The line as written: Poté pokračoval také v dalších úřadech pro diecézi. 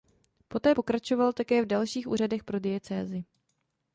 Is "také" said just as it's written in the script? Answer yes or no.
yes